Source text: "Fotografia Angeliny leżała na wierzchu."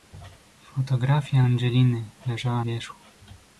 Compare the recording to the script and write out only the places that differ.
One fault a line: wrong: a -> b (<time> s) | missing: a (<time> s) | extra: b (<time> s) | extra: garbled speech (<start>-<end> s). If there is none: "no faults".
missing: na (2.6 s)